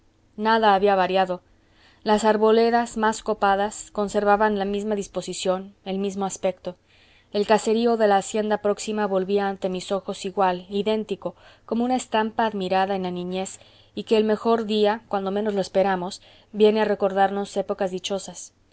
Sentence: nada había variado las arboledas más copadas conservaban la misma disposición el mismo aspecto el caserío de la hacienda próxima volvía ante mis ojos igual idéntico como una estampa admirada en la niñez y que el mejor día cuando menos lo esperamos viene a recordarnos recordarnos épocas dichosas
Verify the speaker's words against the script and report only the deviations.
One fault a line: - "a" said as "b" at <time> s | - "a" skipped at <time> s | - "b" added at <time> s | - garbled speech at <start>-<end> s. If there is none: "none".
- "recordarnos" skipped at 17.6 s